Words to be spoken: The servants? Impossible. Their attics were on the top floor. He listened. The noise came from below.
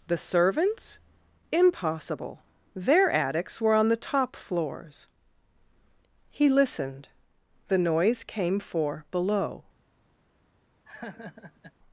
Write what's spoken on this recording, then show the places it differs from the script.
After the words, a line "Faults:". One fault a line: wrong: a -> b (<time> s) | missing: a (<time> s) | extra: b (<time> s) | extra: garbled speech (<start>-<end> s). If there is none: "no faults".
The servants? Impossible. Their attics were on the top floors. He listened. The noise came for below.
Faults:
wrong: floor -> floors (4.4 s)
wrong: from -> for (8.6 s)